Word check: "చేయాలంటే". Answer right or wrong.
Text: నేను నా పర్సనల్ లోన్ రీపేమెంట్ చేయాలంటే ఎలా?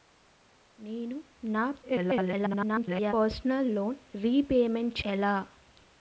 wrong